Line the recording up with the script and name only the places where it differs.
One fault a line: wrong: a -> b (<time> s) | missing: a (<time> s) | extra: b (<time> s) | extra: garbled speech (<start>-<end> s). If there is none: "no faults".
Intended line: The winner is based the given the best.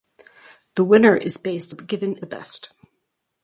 no faults